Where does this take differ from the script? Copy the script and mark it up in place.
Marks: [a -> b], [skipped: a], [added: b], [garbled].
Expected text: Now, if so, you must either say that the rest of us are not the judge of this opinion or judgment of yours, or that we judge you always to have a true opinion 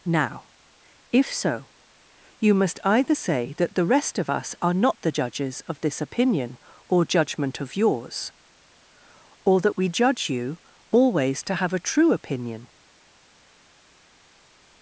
Now, if so, you must either say that the rest of us are not the [judge -> judges] of this opinion or judgment of yours, or that we judge you always to have a true opinion